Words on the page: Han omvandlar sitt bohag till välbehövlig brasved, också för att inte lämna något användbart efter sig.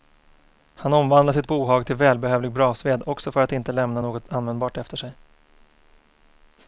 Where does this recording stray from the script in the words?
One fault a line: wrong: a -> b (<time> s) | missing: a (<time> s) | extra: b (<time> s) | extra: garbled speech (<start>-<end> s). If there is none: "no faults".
no faults